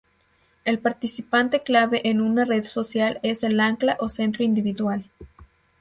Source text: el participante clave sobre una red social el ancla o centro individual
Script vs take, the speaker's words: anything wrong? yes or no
yes